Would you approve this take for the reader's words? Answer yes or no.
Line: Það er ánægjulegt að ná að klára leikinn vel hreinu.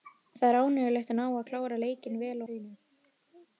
yes